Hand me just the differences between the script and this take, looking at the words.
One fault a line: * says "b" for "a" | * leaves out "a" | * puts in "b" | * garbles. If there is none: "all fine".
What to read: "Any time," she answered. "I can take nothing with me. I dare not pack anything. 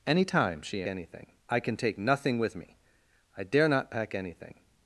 * says "anything" for "answered"